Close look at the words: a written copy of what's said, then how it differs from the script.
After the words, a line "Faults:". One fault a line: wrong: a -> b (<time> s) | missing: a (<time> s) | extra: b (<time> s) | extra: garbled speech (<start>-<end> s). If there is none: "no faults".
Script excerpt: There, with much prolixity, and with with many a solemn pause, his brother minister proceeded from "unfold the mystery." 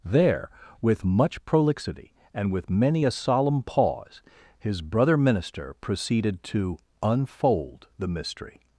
There, with much prolixity, and with many a solemn pause, his brother minister proceeded to "unfold the mystery."
Faults:
missing: with (2.7 s)
wrong: from -> to (6.4 s)